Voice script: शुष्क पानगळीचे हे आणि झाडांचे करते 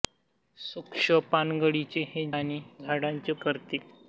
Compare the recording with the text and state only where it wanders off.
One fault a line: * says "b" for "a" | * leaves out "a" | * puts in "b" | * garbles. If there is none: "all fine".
all fine